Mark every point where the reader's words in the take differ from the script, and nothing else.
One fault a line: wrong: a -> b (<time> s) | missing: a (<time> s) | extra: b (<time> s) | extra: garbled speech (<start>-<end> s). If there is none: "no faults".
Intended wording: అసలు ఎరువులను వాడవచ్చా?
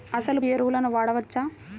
no faults